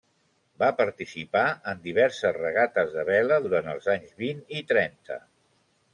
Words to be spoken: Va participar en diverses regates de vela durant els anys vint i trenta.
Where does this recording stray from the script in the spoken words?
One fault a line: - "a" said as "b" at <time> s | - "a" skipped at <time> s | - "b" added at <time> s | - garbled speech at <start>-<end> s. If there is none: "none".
none